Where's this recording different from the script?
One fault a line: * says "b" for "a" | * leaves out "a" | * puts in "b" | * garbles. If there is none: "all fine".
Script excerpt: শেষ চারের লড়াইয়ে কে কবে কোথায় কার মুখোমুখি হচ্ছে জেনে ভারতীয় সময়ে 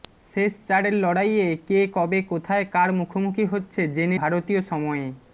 all fine